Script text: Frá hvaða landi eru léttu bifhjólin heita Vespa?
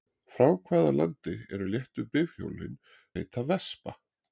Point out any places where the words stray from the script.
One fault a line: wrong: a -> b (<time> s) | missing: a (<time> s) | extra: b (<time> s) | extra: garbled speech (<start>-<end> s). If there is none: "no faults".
no faults